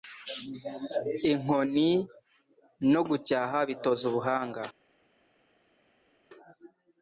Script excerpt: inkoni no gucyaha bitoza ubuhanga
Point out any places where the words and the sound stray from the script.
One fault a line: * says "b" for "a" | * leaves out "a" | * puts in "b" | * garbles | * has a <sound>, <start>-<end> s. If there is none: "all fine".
all fine